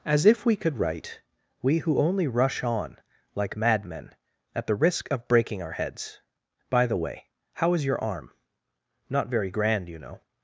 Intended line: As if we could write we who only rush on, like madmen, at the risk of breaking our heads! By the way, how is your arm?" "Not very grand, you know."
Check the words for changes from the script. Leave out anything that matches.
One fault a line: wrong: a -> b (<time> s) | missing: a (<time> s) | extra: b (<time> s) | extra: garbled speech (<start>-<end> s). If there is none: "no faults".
no faults